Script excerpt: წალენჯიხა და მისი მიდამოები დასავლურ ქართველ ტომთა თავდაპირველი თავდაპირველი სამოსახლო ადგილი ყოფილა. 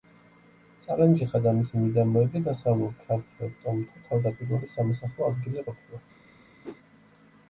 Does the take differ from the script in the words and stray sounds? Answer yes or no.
yes